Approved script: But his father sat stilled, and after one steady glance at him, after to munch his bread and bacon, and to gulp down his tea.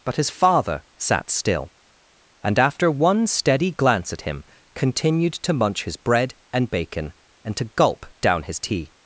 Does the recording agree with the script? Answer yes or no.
no